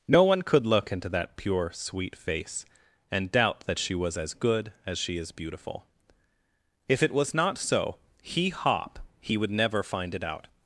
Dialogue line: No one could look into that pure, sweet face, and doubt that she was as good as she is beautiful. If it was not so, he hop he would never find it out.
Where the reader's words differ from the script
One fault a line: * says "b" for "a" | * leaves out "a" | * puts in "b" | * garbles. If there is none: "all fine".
all fine